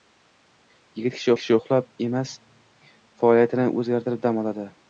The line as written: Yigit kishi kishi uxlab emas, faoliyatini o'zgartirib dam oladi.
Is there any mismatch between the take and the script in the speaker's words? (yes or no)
no